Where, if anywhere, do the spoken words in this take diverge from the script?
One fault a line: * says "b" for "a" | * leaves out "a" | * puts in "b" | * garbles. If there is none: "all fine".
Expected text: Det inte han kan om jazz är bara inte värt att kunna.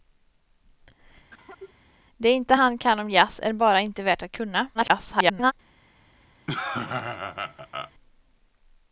* garbles